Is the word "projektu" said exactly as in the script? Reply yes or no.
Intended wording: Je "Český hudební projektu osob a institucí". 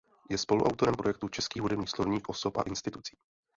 no